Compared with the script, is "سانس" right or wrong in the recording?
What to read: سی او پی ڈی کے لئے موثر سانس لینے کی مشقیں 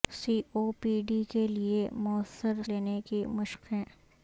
wrong